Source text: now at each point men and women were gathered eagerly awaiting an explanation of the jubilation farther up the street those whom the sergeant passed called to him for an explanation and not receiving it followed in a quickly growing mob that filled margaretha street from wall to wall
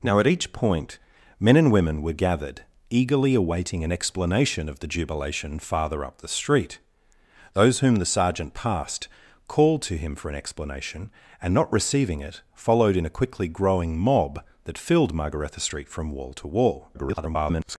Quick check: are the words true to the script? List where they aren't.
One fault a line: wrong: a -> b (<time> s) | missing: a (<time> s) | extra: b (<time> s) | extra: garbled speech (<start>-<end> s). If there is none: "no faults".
extra: garbled speech (16.9-17.8 s)